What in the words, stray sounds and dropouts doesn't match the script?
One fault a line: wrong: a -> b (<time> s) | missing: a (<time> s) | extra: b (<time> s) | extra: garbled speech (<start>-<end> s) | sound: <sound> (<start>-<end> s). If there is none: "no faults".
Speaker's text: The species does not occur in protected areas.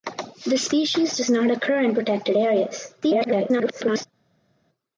extra: garbled speech (3.0-4.1 s)